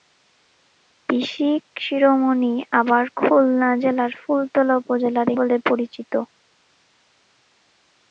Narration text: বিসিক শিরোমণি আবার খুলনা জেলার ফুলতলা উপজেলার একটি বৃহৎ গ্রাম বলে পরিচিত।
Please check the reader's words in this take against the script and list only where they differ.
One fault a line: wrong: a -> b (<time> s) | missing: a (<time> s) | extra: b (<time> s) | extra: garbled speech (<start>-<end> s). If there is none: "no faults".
missing: একটি বৃহৎ গ্রাম (5.3 s)